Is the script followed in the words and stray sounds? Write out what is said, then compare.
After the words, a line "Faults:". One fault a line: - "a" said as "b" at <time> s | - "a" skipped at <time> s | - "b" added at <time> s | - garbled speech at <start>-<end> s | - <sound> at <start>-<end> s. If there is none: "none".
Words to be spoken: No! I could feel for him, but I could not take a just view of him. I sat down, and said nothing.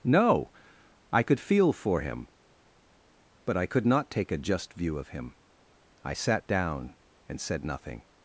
No! I could feel for him, but I could not take a just view of him. I sat down, and said nothing.
Faults:
none